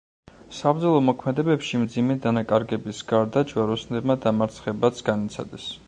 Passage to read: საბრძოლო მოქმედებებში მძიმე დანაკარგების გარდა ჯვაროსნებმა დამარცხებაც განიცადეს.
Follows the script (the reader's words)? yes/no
yes